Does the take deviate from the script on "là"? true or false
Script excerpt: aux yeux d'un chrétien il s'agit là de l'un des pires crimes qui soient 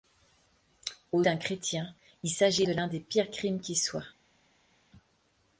true